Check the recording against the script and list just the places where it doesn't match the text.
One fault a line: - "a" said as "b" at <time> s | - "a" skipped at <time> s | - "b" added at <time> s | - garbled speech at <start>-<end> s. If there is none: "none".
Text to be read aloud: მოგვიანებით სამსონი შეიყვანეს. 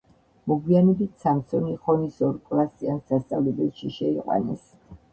- "ხონის ორკლასიან სასწავლებელში" added at 1.8 s